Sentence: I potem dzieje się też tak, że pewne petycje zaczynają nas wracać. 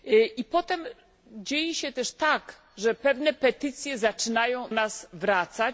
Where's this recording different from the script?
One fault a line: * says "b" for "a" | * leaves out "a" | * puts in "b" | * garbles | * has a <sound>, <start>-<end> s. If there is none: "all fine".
all fine